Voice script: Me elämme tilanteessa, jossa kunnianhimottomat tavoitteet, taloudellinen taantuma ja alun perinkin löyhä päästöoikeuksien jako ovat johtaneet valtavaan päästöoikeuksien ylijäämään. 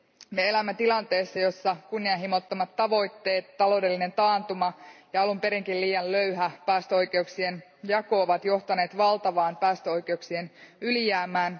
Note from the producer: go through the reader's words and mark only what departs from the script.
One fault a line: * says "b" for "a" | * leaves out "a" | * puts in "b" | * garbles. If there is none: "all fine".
* puts in "liian"